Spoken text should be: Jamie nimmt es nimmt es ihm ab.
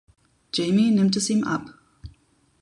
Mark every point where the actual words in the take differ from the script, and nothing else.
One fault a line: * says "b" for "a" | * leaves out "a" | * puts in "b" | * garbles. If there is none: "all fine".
* leaves out "nimmt es"